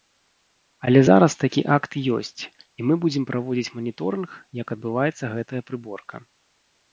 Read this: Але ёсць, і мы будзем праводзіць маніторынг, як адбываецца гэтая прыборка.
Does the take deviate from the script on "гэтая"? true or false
false